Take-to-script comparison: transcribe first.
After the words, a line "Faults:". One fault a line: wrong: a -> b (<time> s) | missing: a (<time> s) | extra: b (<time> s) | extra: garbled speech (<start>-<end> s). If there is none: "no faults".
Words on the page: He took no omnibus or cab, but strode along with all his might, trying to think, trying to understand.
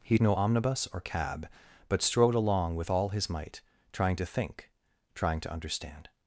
He no omnibus or cab, but strode along with all his might, trying to think, trying to understand.
Faults:
missing: took (0.2 s)